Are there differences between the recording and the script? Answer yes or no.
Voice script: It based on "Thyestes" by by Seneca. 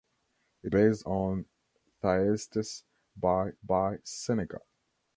no